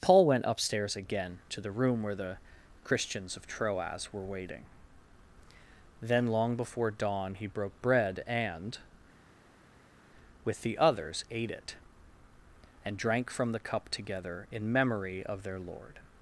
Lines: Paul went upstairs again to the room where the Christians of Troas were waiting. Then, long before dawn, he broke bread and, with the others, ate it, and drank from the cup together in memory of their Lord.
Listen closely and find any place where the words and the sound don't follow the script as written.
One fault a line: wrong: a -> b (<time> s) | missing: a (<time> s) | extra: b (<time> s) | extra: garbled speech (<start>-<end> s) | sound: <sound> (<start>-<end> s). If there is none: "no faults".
no faults